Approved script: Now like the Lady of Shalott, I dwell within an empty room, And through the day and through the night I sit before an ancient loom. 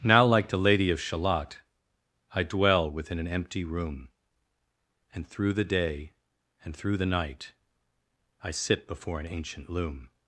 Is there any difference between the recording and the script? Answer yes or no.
no